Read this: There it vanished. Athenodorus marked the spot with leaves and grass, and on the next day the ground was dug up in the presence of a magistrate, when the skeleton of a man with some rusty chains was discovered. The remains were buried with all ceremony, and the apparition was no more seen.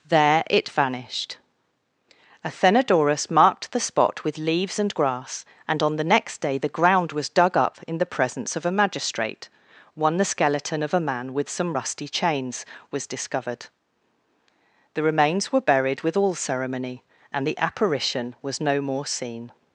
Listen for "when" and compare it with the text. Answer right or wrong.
wrong